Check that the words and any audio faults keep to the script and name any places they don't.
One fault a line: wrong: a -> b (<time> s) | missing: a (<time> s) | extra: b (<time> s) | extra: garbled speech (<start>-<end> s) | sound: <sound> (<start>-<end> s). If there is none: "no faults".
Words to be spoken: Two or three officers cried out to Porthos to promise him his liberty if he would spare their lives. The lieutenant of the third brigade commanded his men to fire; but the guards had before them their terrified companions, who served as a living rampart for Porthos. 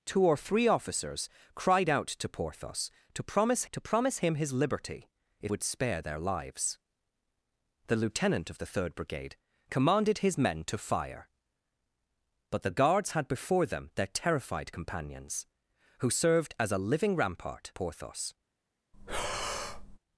extra: to promise (3.7 s)
missing: he (5.5 s)
missing: for (17.7 s)
sound: breath (18.9-20.0 s)